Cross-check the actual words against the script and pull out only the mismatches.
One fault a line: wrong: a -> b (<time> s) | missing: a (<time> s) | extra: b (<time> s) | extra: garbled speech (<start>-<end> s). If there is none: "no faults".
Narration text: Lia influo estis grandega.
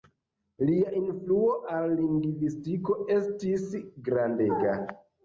extra: al lingvistiko (1.7 s)